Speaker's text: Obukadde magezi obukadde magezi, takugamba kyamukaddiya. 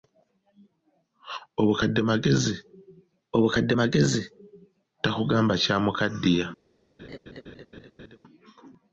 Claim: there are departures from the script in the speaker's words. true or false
false